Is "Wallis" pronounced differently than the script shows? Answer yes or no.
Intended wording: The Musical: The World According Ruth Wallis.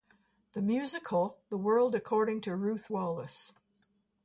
no